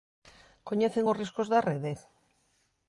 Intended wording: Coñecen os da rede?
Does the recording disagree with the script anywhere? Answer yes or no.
yes